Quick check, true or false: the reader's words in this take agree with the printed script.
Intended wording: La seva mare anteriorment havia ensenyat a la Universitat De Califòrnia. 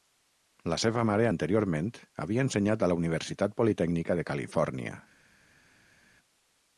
false